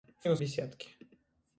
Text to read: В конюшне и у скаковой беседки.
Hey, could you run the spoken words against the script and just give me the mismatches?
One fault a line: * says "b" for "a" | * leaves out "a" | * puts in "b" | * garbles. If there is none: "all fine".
* leaves out "конюшне"
* leaves out "скаковой"